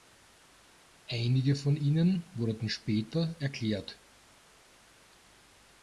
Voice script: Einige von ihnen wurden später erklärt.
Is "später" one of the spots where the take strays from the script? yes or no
no